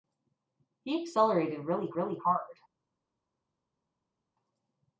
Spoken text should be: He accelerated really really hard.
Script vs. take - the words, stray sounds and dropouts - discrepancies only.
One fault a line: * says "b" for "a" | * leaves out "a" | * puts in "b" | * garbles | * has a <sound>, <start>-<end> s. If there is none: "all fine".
all fine